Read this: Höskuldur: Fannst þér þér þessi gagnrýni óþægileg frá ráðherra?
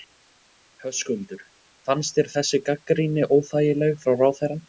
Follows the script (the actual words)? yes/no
no